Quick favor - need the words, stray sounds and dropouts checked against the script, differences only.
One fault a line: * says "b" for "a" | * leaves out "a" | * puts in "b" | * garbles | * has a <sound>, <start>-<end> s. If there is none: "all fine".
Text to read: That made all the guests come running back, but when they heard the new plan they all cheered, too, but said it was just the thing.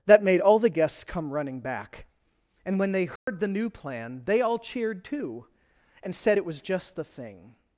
* says "and" for "but"
* has a dropout, 3.2-3.3 s
* says "and" for "but"